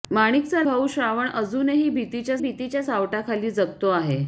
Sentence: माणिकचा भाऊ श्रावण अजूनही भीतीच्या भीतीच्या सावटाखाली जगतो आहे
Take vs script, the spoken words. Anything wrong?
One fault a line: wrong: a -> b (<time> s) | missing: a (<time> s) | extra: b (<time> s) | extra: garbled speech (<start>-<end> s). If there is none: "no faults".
no faults